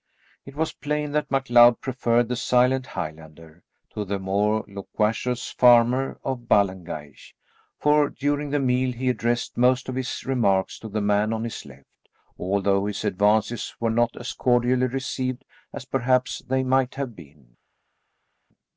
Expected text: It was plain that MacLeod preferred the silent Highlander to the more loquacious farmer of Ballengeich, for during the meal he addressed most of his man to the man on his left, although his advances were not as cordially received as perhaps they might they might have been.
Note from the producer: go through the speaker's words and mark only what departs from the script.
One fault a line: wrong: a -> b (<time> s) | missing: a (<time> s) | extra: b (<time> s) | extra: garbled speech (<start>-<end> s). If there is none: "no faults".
wrong: man -> remarks (10.2 s)
missing: they might (17.0 s)